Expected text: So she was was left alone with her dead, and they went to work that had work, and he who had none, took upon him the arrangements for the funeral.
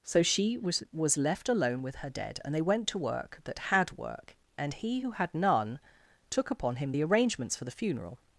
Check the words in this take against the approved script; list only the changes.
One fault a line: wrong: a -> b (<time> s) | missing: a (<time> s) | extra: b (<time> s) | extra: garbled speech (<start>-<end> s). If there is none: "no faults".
no faults